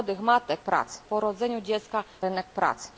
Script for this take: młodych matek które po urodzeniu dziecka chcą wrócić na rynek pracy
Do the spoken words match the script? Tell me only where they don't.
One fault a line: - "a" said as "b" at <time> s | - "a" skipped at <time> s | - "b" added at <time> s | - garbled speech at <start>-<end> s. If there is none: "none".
- "które" said as "pracy" at 0.6 s
- "chcą wrócić na" skipped at 2.0 s